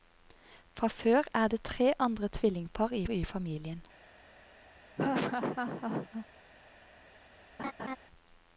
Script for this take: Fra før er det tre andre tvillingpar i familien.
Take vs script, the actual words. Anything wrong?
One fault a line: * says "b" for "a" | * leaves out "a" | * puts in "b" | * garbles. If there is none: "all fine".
* puts in "i"